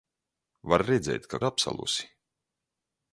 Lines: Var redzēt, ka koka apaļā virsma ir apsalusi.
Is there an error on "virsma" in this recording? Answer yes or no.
yes